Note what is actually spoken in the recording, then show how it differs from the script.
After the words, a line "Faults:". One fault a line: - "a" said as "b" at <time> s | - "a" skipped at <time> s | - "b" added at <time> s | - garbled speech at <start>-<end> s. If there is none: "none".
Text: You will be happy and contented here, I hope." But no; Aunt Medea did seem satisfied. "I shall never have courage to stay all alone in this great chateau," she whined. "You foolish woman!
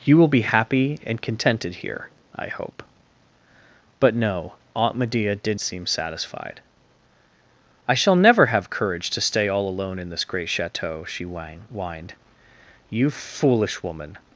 You will be happy and contented here, I hope." But no; Aunt Medea did seem satisfied. "I shall never have courage to stay all alone in this great chateau," she whined. "You foolish woman!
Faults:
none